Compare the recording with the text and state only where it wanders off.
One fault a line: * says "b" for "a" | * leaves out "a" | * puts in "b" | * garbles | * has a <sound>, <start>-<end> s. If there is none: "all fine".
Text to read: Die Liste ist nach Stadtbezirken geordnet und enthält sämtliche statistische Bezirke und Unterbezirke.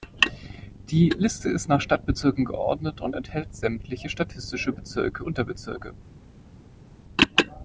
* leaves out "und"